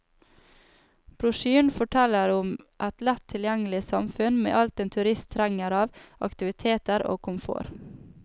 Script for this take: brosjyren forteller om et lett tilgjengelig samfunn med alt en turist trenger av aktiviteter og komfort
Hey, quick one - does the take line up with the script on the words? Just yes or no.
yes